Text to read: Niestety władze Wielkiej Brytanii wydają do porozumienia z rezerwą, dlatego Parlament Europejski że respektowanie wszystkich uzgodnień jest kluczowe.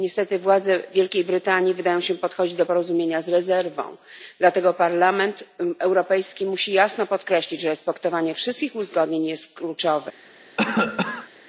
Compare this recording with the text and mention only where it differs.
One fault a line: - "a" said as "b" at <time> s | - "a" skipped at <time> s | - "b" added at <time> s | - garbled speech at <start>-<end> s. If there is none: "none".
- "się podchodzić" added at 2.0 s
- "musi jasno podkreślić" added at 6.4 s